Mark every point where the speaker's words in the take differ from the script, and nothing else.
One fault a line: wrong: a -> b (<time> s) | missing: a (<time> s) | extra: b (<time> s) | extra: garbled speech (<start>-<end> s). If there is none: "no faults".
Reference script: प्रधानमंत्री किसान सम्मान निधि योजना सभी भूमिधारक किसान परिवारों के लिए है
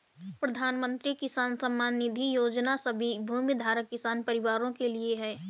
no faults